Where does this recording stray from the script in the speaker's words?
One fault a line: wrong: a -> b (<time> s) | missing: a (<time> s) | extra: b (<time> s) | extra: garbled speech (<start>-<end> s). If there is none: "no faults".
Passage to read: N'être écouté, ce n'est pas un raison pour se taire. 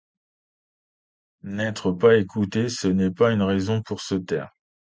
extra: pas (1.9 s)
wrong: un -> une (3.3 s)